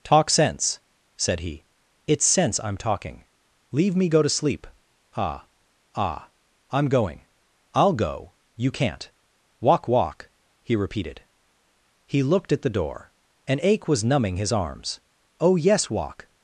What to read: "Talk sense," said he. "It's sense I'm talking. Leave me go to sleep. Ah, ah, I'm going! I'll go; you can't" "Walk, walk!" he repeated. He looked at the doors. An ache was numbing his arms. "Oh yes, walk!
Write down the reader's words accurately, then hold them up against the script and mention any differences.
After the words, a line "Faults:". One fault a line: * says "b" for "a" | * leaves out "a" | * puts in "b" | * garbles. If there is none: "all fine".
"Talk sense," said he. "It's sense I'm talking. Leave me go to sleep. Ah, ah, I'm going! I'll go; you can't" "Walk, walk!" he repeated. He looked at the door. An ache was numbing his arms. "Oh yes, walk!
Faults:
* says "door" for "doors"